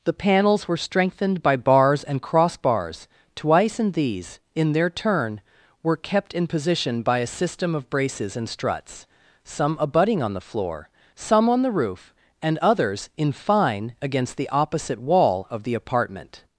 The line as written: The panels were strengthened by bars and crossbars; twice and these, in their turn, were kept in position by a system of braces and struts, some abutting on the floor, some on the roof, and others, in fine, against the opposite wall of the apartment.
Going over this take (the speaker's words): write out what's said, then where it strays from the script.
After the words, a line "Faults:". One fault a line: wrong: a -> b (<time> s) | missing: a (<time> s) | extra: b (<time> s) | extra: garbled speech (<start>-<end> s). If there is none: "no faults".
The panels were strengthened by bars and crossbars; twice and these, in their turn, were kept in position by a system of braces and struts, some abutting on the floor, some on the roof, and others, in fine, against the opposite wall of the apartment.
Faults:
no faults